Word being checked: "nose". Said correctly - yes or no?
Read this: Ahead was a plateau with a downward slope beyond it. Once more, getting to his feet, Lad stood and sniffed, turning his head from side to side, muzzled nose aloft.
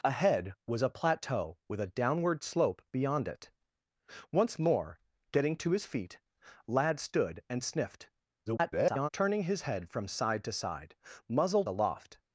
no